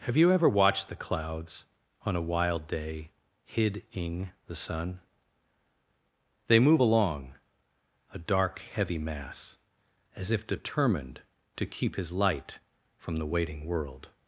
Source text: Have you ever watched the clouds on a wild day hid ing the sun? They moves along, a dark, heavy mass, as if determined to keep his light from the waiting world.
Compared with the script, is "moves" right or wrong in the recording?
wrong